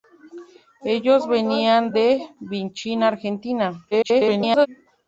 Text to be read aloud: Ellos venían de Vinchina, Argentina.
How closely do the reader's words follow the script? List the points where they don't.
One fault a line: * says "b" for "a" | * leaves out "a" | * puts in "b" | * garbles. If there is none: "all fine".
* garbles